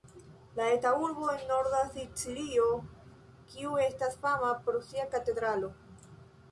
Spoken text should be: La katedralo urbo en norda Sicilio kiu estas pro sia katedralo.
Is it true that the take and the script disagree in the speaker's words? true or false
true